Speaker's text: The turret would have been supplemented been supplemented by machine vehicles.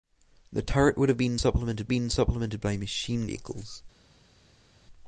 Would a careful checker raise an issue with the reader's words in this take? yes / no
no